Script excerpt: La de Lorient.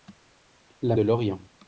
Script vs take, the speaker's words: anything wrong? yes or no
no